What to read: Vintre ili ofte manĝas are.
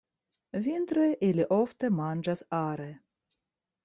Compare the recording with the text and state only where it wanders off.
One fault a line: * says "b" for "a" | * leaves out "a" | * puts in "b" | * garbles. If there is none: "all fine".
all fine